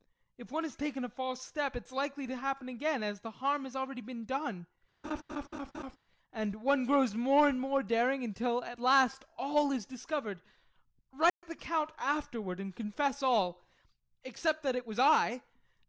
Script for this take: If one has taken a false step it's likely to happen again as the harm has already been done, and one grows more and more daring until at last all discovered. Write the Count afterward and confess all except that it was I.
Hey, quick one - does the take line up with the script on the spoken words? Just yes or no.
no